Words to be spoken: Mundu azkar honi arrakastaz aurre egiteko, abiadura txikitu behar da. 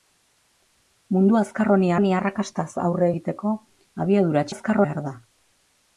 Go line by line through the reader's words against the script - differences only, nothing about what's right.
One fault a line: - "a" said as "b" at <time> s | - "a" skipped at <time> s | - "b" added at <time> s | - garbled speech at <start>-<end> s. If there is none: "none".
- "honi" added at 2.0 s
- "txikitu" said as "azkar" at 4.5 s